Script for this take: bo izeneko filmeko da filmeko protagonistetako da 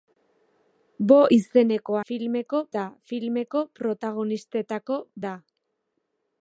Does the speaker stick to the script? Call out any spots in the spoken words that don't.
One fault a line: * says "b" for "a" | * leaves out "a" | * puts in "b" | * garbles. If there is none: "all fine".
all fine